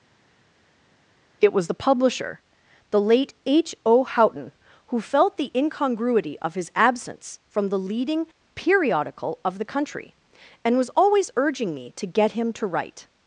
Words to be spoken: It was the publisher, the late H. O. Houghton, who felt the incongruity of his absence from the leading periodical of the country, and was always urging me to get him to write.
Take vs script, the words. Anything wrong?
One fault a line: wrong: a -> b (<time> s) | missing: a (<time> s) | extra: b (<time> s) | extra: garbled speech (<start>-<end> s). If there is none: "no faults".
no faults